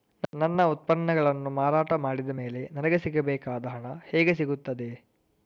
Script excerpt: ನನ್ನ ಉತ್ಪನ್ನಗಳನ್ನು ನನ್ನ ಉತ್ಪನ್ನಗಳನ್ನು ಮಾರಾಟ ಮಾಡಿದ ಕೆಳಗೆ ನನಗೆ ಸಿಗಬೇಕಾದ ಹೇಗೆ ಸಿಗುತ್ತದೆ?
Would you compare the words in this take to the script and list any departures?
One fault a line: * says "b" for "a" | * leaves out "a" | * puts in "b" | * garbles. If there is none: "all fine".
* leaves out "ನನ್ನ ಉತ್ಪನ್ನಗಳನ್ನು"
* says "ಮೇಲೆ" for "ಕೆಳಗೆ"
* puts in "ಹಣ"